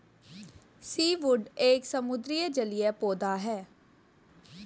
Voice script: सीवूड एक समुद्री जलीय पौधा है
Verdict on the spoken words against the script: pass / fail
pass